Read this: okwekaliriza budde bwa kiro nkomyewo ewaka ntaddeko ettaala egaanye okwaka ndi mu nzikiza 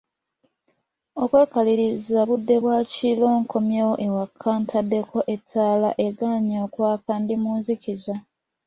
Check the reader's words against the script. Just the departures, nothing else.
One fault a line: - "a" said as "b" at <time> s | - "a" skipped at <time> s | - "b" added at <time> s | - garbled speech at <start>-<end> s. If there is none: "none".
none